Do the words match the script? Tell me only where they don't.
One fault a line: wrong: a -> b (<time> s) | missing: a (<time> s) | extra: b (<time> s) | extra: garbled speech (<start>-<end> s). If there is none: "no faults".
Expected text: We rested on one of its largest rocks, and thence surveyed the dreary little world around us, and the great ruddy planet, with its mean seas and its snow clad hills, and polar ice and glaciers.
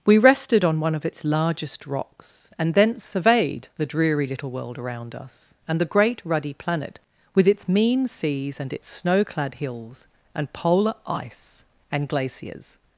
no faults